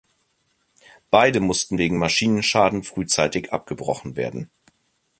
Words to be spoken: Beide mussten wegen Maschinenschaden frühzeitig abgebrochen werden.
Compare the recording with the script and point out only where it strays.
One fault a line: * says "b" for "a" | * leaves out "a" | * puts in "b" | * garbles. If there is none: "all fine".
all fine